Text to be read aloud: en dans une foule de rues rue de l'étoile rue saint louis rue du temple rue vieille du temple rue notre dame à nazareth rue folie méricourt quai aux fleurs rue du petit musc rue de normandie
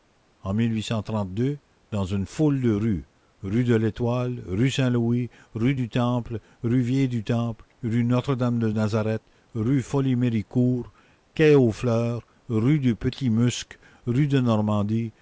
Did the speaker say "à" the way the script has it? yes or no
no